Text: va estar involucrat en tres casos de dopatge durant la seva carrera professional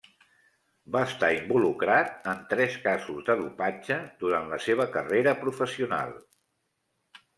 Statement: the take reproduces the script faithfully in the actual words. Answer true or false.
true